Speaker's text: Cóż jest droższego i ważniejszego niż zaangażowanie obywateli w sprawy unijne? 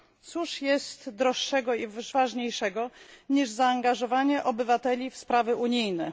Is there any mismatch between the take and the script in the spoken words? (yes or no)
no